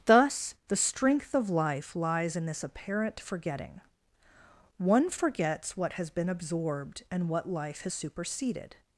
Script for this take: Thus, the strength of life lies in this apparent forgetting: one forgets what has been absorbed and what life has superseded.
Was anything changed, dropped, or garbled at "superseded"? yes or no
no